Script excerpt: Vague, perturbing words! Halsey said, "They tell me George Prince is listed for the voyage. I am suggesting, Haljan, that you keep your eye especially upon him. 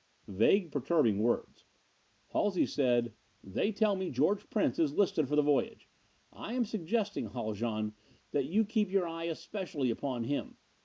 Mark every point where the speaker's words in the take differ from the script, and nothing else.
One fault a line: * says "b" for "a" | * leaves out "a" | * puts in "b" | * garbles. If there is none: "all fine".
all fine